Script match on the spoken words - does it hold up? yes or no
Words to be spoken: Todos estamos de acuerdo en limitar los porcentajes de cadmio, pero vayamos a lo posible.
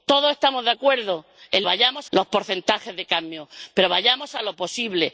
no